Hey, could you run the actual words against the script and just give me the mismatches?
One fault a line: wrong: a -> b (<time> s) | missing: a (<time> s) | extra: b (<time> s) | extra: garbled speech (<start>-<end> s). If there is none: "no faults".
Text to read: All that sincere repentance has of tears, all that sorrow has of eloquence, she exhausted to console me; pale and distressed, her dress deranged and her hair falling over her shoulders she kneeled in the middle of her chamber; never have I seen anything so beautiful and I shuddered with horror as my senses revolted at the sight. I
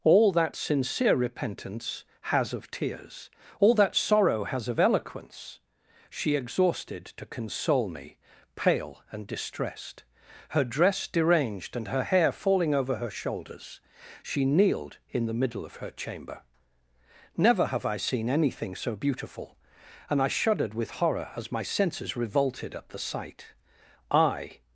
no faults